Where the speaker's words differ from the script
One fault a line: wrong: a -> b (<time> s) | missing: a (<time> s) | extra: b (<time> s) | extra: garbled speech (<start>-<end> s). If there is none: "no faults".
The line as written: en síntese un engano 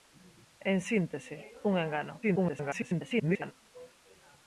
extra: garbled speech (2.2-3.5 s)